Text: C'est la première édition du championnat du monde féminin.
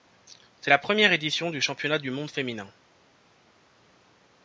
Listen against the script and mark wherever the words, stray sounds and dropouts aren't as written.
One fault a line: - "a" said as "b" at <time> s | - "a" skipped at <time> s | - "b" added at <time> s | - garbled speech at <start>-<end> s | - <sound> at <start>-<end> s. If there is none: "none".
none